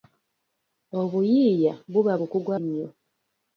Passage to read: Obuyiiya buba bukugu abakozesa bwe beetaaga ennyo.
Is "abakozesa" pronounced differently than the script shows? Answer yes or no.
yes